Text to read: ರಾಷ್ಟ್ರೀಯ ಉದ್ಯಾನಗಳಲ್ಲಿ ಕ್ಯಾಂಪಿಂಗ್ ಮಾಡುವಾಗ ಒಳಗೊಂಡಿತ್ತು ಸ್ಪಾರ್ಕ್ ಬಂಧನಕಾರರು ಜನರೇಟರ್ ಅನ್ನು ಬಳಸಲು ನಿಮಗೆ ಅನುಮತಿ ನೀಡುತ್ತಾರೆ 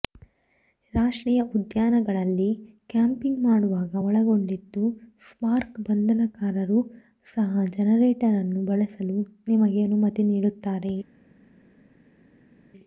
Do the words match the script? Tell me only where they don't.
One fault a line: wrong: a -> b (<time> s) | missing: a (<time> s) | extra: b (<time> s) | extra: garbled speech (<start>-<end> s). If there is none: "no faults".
extra: ಸಹ (7.3 s)